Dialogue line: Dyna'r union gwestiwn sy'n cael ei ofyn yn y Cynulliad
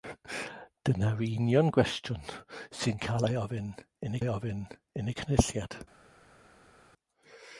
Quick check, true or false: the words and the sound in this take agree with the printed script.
false